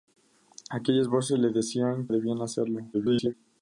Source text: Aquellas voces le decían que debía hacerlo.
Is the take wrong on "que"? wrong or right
wrong